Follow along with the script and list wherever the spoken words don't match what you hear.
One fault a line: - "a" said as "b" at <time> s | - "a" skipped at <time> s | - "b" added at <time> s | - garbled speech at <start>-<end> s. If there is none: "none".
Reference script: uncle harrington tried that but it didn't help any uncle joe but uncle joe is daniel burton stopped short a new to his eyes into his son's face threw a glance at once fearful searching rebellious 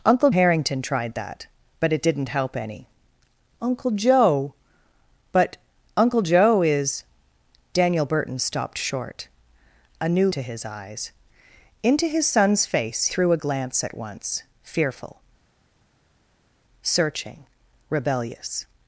none